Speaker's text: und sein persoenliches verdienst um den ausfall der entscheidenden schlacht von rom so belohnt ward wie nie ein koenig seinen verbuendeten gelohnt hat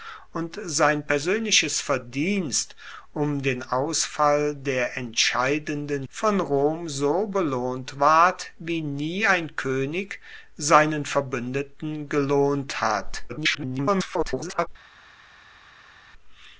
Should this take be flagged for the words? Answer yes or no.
yes